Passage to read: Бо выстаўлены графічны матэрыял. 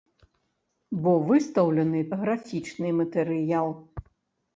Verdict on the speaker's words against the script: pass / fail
pass